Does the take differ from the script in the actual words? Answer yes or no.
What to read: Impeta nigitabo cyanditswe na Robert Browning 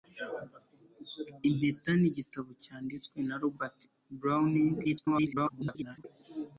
yes